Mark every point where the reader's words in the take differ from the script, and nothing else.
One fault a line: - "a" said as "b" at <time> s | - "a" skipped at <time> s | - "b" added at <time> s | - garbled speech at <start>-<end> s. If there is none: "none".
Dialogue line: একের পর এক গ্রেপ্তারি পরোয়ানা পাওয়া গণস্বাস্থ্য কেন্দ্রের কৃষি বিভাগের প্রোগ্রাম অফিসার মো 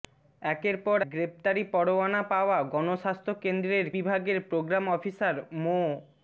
- "এক" skipped at 1.0 s
- "কৃষি" skipped at 3.9 s